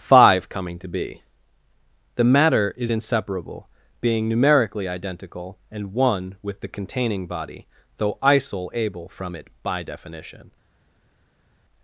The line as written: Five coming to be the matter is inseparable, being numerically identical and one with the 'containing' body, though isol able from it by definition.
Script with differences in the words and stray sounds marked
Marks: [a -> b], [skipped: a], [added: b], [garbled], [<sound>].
Five coming to be the matter is inseparable, being numerically identical and one with the 'containing' body, though isol able from it by definition.